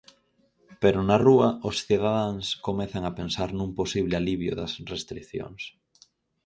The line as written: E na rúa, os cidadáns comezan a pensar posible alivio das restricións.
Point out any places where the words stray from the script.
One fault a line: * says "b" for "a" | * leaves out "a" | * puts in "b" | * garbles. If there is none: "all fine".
* says "Pero" for "E"
* puts in "nun"